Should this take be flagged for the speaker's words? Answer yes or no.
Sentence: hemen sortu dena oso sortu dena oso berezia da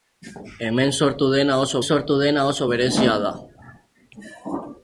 no